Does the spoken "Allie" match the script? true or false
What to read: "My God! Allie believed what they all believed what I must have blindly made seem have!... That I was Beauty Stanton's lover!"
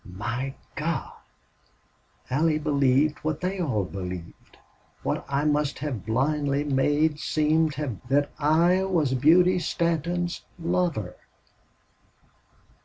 true